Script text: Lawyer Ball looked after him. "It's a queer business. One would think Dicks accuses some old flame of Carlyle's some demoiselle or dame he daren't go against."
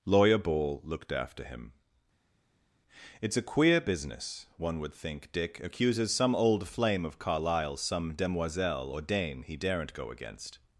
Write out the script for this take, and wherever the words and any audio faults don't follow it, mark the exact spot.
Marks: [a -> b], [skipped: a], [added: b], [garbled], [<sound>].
Lawyer Ball looked after him. "It's a queer business. One would think [Dicks -> Dick] accuses some old flame of Carlyle's some demoiselle or dame he daren't go against."